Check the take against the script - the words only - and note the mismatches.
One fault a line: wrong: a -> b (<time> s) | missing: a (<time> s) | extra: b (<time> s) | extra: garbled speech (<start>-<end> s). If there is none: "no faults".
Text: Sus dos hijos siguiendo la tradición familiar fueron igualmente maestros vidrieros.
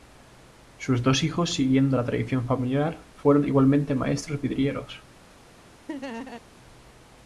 no faults